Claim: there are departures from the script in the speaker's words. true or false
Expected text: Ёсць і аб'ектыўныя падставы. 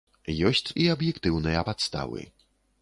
false